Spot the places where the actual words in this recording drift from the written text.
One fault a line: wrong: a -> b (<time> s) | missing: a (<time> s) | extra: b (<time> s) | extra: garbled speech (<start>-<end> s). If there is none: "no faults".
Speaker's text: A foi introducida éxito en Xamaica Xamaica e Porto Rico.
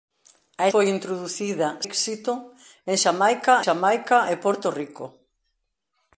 no faults